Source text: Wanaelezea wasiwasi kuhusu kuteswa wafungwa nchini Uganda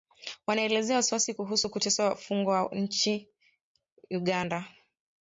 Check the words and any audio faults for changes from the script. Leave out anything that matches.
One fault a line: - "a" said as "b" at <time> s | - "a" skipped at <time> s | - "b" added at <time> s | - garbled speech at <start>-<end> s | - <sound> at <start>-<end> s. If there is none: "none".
none